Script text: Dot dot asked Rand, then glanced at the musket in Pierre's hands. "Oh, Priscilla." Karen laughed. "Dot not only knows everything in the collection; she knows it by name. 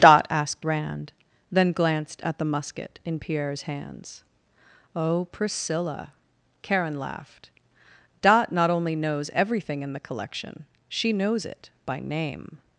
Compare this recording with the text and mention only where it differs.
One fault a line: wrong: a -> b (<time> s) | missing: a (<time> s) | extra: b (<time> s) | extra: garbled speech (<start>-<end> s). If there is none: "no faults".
missing: dot (0.2 s)